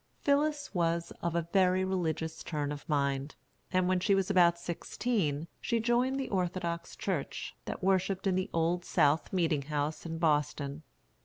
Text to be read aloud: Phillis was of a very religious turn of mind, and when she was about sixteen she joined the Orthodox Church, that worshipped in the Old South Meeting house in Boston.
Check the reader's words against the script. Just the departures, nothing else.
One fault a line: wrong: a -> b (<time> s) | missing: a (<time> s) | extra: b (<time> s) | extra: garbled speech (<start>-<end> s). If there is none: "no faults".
no faults